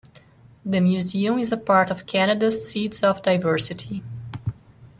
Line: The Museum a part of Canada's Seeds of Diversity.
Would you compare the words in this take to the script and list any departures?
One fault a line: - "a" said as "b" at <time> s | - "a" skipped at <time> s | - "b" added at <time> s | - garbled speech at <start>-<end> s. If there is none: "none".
- "is" added at 1.4 s